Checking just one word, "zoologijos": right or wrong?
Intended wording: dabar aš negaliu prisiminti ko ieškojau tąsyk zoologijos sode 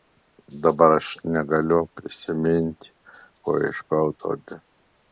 wrong